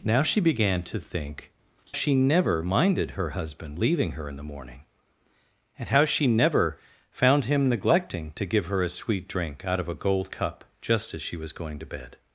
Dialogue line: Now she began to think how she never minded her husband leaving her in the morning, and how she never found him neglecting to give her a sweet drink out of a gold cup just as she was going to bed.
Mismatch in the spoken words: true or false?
true